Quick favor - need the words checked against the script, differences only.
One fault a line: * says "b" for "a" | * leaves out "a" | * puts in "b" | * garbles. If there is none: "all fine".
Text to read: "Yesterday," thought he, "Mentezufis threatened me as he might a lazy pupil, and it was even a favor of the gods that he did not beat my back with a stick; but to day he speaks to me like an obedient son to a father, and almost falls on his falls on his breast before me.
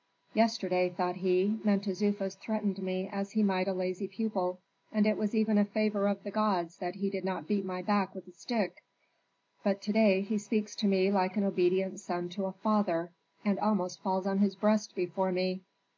* leaves out "falls on his"